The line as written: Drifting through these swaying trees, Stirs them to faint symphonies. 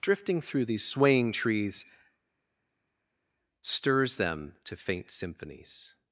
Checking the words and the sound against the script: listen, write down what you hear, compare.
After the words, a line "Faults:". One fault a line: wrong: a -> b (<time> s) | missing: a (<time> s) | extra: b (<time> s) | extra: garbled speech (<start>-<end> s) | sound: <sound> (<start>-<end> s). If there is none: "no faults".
Drifting through these swaying trees, Stirs them to faint symphonies.
Faults:
no faults